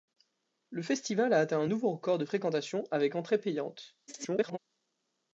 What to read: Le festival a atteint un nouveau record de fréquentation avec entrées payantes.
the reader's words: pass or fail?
fail